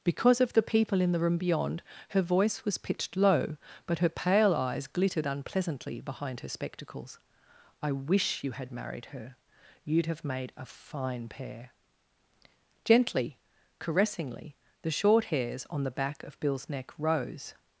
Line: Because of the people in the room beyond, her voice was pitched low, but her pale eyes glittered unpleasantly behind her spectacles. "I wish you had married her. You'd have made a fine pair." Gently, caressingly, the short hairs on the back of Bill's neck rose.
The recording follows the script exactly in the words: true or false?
true